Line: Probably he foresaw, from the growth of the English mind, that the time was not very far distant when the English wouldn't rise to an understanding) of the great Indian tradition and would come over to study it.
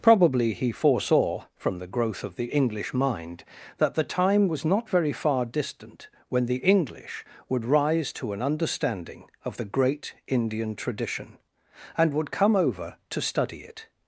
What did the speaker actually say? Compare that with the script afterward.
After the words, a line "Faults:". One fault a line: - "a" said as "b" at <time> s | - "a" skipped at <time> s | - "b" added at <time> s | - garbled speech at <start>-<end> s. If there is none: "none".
Probably he foresaw, from the growth of the English mind, that the time was not very far distant when the English would rise to an understanding) of the great Indian tradition and would come over to study it.
Faults:
- "wouldn't" said as "would" at 7.5 s